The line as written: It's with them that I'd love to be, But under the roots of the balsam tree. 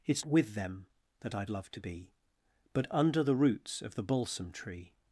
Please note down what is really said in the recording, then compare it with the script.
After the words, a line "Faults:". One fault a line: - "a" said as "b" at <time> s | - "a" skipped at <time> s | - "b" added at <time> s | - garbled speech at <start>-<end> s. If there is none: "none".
It's with them that I'd love to be, But under the roots of the balsam tree.
Faults:
none